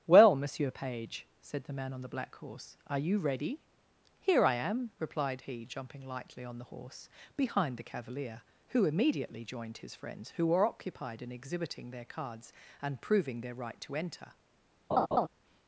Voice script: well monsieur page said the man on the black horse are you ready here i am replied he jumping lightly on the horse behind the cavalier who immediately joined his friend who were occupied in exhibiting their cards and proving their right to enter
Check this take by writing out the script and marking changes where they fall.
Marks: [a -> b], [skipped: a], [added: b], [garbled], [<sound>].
well monsieur page said the man on the black horse are you ready here i am replied he jumping lightly on the horse behind the cavalier who immediately joined his [friend -> friends] who were occupied in exhibiting their cards and proving their right to enter [laugh]